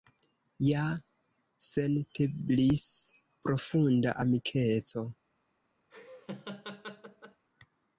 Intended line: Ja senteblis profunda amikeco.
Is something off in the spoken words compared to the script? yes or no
no